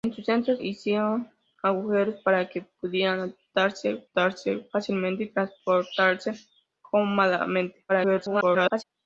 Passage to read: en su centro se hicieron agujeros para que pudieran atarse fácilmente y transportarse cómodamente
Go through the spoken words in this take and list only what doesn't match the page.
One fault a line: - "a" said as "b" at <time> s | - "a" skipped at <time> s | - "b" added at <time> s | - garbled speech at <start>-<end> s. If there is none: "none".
- "se" skipped at 0.6 s
- "atarse" added at 4.1 s
- garbled speech at 7.9-8.8 s